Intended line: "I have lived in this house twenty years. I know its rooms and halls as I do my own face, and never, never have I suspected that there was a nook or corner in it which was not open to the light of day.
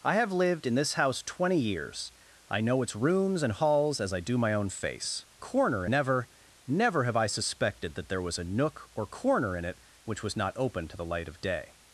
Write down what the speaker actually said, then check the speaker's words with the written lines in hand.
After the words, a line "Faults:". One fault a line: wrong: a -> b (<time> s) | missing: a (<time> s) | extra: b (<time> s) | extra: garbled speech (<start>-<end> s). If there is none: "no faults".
"I have lived in this house twenty years. I know its rooms and halls as I do my own face, corner never, never have I suspected that there was a nook or corner in it which was not open to the light of day.
Faults:
wrong: and -> corner (5.4 s)